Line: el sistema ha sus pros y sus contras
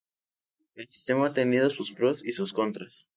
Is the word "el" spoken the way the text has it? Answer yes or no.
yes